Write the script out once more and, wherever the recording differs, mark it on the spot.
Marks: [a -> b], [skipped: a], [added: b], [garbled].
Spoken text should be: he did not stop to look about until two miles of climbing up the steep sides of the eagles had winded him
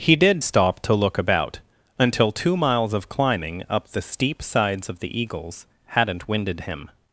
he did [skipped: not] stop to look about until two miles of climbing up the steep sides of the eagles [had -> hadn't] winded him